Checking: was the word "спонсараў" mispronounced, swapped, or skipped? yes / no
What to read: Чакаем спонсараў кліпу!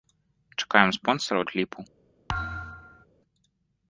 no